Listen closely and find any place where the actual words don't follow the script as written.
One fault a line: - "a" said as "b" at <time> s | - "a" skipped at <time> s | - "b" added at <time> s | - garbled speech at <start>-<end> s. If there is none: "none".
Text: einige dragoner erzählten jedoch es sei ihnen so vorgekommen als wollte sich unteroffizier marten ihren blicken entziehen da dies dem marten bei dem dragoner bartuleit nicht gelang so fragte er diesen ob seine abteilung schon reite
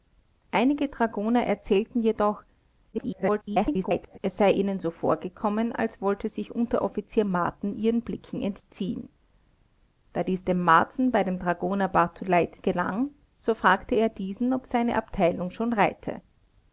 - garbled speech at 2.9-4.2 s
- "nicht" skipped at 12.6 s